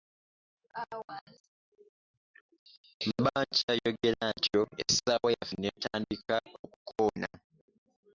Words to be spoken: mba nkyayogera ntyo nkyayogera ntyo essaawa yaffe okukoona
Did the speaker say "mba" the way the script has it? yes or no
yes